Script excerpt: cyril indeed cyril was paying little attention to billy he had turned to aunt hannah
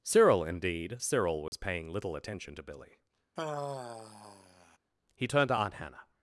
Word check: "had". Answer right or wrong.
wrong